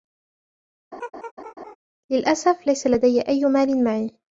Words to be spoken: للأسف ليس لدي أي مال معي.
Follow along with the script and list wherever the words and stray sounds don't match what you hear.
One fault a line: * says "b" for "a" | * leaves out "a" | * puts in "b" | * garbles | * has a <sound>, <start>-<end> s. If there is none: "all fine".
* has a laugh, 0.9-1.8 s